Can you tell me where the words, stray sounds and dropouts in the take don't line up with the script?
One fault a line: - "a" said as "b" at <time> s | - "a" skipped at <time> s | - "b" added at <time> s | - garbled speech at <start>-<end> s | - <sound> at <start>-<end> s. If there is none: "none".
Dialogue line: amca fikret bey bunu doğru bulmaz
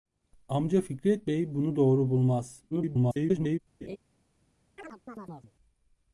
- garbled speech at 2.7-3.6 s
- laugh at 3.8-4.0 s
- chirp at 4.8-5.5 s